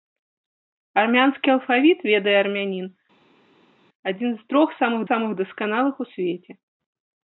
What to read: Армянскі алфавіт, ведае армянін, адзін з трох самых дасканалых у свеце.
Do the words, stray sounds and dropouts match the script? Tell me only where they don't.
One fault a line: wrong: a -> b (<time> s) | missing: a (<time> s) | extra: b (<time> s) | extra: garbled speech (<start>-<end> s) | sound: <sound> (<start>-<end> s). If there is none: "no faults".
extra: самых (5.1 s)